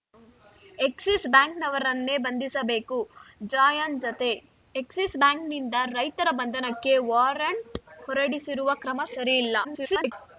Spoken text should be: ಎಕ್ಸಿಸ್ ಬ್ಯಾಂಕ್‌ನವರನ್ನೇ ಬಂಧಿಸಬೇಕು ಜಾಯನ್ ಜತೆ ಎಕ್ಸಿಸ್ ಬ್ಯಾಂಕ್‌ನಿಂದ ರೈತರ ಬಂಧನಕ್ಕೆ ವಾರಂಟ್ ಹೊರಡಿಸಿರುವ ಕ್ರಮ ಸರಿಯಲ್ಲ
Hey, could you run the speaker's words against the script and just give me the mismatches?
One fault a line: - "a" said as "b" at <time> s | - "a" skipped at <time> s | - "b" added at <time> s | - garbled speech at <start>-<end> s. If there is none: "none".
- garbled speech at 9.6-10.1 s